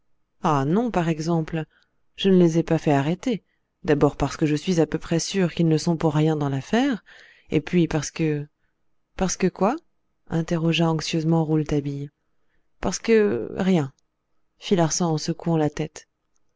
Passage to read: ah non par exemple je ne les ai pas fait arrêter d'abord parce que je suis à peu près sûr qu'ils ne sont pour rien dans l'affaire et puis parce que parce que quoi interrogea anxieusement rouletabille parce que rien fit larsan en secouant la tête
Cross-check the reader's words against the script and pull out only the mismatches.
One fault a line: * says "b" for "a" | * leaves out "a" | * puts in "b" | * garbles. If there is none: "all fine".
all fine